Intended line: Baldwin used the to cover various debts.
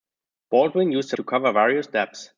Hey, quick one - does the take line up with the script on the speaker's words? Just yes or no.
yes